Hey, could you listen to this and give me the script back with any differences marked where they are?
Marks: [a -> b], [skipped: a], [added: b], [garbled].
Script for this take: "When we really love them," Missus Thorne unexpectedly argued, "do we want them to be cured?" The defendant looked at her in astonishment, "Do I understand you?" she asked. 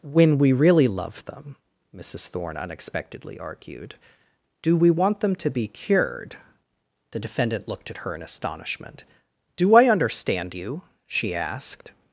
"When we really love them," Missus Thorne unexpectedly argued, "do we want them to be cured?" The defendant looked at her in astonishment, "Do I understand you?" she asked.